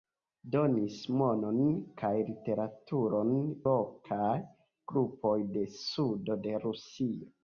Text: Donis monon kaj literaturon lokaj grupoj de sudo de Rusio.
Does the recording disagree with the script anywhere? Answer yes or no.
no